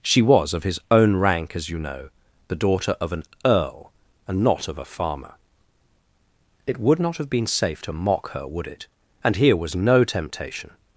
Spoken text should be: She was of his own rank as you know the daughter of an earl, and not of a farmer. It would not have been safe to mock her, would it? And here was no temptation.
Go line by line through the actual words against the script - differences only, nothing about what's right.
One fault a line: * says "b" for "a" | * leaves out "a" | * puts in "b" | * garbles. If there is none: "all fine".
all fine